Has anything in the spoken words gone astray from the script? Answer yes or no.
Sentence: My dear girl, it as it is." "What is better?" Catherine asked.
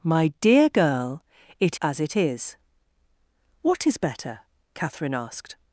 no